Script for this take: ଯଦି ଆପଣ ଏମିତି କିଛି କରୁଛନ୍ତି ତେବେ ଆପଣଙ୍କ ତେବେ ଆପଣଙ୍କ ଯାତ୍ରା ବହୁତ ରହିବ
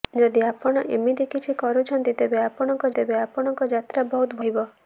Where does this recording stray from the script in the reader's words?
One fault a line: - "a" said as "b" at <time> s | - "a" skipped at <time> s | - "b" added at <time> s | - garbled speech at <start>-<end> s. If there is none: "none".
none